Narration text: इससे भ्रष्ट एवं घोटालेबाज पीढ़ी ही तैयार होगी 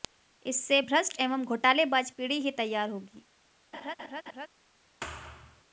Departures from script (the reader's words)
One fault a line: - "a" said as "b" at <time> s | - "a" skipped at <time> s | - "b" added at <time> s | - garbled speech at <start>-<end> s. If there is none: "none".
none